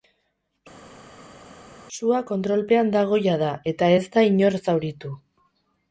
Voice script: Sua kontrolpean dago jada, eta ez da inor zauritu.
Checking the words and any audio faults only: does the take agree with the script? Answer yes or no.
yes